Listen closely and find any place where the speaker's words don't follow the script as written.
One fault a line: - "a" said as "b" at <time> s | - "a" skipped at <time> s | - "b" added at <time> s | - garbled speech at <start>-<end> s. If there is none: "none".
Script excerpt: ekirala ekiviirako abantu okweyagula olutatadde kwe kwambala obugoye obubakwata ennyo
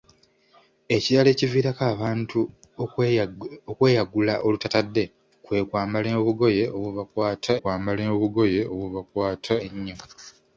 - "kwambala obugoye obubakwata" added at 7.6 s